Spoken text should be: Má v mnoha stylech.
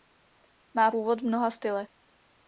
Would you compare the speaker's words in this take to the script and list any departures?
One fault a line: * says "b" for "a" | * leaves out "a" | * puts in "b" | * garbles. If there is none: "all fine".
* puts in "původ"